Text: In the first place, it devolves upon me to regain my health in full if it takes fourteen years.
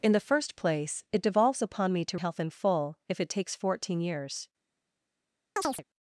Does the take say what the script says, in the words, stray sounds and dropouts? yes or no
no